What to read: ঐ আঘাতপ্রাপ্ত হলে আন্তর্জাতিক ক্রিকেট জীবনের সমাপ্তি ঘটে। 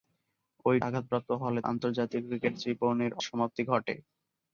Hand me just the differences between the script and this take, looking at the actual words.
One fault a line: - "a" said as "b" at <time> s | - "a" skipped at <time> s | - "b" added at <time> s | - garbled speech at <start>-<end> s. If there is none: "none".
none